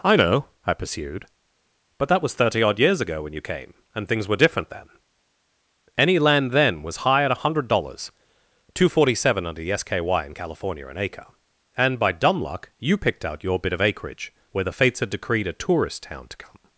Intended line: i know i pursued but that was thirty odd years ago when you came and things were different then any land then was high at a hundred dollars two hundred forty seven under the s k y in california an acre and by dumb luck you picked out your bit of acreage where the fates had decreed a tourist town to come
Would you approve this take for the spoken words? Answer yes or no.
no